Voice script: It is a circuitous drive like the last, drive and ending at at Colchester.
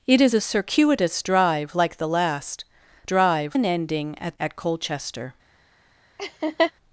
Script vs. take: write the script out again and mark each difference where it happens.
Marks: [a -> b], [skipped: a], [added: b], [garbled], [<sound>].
It is a circuitous drive like the last, drive and ending at at Colchester. [laugh]